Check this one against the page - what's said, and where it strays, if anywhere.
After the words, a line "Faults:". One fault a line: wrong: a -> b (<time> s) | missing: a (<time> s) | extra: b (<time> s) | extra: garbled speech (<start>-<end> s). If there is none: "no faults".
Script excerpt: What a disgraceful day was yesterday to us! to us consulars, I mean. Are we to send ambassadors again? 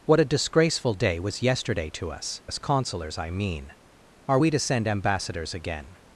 What a disgraceful day was yesterday to us! us consulars, I mean. Are we to send ambassadors again?
Faults:
missing: to (2.4 s)